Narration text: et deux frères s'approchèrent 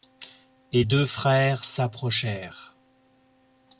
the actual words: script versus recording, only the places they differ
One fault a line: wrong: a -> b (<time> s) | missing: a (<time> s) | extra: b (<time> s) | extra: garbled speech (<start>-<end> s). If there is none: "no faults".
no faults